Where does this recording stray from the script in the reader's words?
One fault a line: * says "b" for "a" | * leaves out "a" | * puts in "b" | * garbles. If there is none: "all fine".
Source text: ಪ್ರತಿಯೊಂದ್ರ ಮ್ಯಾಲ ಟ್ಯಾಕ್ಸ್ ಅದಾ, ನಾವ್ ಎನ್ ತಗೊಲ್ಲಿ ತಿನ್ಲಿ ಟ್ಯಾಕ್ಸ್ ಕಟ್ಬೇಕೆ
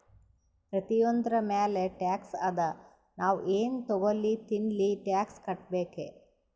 all fine